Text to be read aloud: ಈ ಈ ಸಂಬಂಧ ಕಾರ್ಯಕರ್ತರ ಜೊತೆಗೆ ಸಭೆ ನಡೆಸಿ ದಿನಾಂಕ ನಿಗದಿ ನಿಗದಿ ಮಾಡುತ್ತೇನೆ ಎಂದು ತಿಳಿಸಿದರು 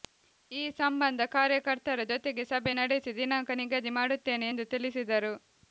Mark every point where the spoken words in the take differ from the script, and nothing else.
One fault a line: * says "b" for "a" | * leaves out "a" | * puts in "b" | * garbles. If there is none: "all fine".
* leaves out "ಈ"
* leaves out "ನಿಗದಿ"